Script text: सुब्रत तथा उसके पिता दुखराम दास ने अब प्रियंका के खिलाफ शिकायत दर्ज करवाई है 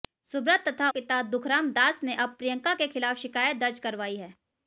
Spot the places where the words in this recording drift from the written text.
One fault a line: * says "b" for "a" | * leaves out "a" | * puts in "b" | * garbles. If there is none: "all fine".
* leaves out "उसके"